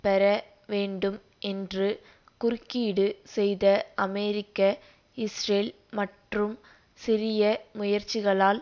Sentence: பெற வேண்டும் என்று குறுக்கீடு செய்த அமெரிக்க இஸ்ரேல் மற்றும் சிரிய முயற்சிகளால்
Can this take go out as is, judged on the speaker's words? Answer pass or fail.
pass